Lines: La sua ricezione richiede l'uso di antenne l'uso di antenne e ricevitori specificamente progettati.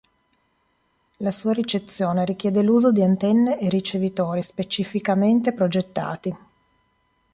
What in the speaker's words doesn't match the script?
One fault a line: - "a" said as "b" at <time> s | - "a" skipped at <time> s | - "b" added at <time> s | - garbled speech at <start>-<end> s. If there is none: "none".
- "l'uso di antenne" skipped at 3.6 s